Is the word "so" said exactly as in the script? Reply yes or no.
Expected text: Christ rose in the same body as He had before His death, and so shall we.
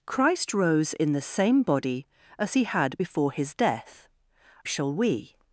no